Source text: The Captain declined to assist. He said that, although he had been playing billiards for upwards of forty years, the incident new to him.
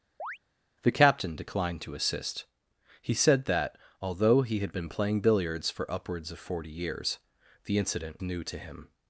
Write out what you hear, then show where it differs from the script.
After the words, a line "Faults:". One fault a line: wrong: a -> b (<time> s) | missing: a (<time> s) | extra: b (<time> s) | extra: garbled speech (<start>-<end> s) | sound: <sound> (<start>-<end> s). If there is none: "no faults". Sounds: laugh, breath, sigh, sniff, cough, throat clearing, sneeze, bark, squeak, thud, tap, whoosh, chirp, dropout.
The Captain declined to assist. He said that, although he had been playing billiards for upwards of forty years, the incident new to him.
Faults:
sound: chirp (0.2-0.4 s)